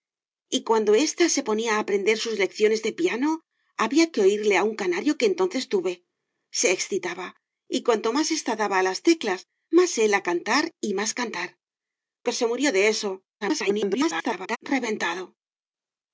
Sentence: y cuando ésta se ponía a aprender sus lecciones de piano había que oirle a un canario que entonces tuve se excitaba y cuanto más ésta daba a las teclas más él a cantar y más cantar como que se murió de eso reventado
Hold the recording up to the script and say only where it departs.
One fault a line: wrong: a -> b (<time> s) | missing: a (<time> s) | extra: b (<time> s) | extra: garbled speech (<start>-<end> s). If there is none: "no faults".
missing: como (11.5 s)
extra: garbled speech (13.4-14.6 s)